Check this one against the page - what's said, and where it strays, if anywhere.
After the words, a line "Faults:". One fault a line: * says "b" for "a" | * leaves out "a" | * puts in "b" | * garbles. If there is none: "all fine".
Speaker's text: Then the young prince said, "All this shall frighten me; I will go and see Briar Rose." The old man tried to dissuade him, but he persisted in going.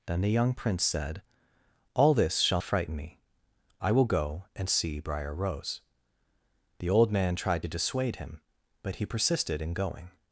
Then the young prince said, "All this shall frighten me; I will go and see Briar Rose." The old man tried to dissuade him, but he persisted in going.
Faults:
all fine